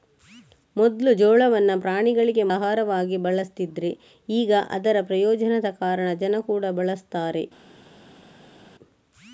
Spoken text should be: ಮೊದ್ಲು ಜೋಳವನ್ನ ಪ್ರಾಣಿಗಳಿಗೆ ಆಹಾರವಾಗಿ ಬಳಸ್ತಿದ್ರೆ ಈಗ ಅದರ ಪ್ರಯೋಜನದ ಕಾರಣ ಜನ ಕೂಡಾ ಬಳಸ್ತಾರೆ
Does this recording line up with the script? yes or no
yes